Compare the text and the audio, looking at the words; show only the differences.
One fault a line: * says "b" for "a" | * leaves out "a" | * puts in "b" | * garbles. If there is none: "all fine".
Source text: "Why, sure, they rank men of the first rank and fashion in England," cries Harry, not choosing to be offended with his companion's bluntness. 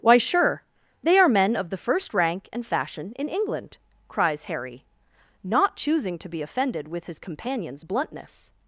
* says "are" for "rank"